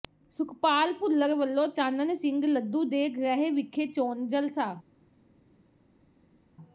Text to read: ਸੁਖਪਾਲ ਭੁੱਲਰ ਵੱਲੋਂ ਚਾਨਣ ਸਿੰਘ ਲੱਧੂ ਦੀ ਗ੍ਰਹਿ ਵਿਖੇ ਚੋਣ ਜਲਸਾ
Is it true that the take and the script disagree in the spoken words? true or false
true